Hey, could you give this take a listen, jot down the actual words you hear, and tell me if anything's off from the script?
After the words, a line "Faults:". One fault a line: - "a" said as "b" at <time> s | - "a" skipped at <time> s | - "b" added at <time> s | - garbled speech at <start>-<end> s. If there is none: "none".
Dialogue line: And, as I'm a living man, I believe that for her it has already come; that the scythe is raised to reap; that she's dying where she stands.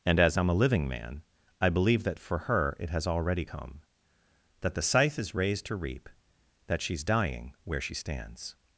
And, as I'm a living man, I believe that for her it has already come; that the scythe is raised to reap; that she's dying where she stands.
Faults:
none